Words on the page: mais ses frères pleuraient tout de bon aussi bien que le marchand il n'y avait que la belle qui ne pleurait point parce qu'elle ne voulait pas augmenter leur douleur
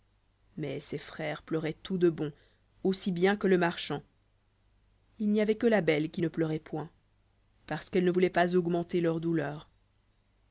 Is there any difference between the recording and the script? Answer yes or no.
no